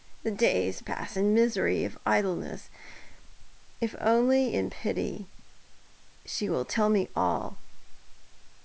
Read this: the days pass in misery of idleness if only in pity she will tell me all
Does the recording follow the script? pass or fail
pass